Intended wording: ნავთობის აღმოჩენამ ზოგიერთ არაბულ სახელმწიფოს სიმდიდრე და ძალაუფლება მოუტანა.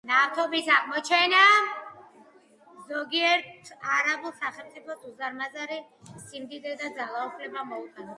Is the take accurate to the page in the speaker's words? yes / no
no